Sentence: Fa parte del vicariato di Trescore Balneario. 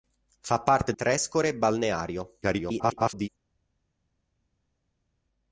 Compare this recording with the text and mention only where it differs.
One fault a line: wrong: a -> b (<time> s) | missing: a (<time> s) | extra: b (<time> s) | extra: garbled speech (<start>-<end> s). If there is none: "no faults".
missing: del vicariato di (0.9 s)
extra: garbled speech (2.4-3.3 s)